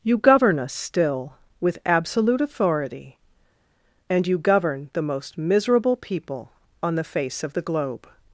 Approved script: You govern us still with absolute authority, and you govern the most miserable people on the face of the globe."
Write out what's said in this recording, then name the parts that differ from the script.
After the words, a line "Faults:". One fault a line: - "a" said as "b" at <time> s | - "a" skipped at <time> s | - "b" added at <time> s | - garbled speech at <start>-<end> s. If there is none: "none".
You govern us still with absolute authority, and you govern the most miserable people on the face of the globe."
Faults:
none